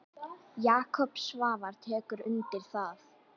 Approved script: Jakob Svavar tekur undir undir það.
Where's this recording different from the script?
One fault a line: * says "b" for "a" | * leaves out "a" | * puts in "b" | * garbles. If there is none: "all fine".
* leaves out "undir"